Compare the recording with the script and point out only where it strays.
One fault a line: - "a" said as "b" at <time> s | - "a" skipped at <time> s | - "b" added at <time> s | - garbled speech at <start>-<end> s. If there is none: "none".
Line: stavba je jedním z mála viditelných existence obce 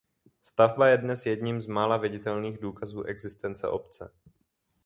- "dnes" added at 1.0 s
- "důkazů" added at 2.6 s